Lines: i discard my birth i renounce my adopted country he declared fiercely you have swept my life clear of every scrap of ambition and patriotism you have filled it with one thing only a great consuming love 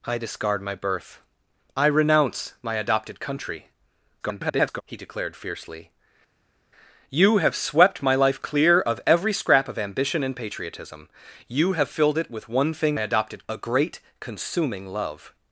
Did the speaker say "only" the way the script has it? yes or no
no